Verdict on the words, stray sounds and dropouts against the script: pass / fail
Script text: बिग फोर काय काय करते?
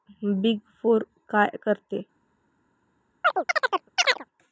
fail